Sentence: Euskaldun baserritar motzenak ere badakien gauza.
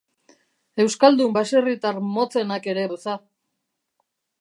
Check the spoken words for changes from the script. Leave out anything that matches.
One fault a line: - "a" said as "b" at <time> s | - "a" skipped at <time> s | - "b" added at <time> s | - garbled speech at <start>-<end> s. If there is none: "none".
- "badakien" skipped at 2.9 s